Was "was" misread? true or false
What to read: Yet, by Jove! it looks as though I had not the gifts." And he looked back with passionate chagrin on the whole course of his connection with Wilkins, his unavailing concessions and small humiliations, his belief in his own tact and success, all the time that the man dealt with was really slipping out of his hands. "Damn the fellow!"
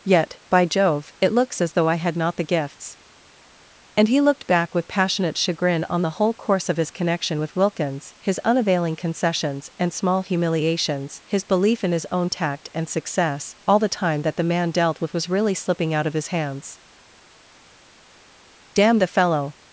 false